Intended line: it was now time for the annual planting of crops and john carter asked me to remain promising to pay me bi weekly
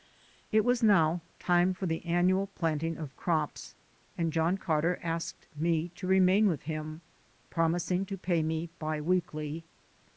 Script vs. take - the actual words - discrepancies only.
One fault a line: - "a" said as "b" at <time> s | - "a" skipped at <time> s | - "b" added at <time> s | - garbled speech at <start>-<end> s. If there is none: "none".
- "with him" added at 6.5 s